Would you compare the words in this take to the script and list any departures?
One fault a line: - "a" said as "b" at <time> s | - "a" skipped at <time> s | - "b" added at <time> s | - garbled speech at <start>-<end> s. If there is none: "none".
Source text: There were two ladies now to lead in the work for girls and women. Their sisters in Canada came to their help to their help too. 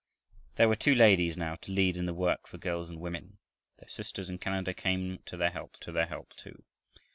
none